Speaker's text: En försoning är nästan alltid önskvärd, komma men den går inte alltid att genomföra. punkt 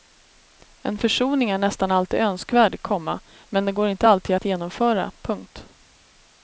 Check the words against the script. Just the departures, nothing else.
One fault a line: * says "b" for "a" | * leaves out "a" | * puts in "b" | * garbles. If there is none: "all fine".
all fine